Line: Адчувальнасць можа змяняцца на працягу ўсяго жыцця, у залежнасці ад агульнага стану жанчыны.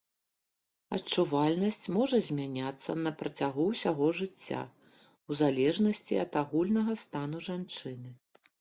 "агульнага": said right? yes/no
yes